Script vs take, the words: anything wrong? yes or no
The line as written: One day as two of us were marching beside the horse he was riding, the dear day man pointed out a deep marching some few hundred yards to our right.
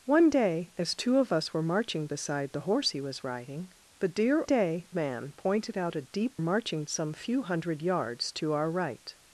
no